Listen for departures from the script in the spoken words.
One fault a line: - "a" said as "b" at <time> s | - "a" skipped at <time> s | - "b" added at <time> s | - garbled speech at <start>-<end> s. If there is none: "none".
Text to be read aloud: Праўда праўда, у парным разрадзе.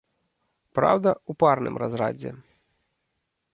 - "праўда" skipped at 1.1 s